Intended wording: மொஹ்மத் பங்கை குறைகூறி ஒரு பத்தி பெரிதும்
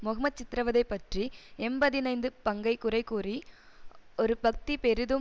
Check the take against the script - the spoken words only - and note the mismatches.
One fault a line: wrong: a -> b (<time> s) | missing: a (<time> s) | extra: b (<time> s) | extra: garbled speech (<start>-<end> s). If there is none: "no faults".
extra: சித்திரவதை பற்றி எம்பதினைந்து (0.4 s)